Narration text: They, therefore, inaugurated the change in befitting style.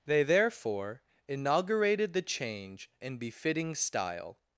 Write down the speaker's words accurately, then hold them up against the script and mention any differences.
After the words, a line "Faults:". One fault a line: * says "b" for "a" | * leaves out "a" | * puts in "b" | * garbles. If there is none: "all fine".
They, therefore, inaugurated the change in befitting style.
Faults:
all fine